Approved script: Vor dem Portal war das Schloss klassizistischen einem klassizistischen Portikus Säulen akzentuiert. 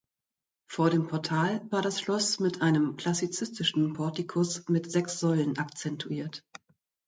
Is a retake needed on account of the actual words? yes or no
yes